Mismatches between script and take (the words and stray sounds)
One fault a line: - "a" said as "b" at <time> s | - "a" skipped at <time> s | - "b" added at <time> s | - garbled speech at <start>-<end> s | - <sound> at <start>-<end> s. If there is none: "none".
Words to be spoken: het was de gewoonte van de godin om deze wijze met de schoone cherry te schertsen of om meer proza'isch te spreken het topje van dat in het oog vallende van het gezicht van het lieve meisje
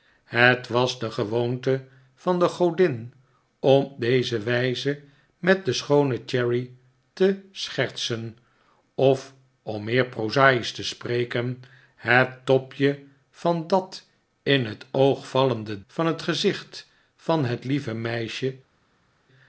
none